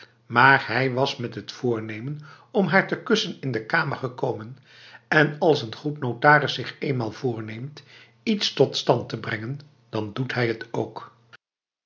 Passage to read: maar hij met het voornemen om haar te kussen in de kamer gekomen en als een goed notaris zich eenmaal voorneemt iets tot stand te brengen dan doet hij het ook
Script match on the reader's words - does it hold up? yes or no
no